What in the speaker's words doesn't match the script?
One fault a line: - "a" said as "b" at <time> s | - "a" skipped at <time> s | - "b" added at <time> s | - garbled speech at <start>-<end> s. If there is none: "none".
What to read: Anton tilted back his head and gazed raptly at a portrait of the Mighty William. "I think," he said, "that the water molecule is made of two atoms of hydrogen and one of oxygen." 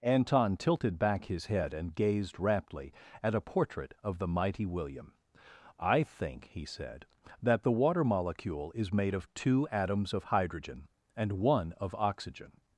none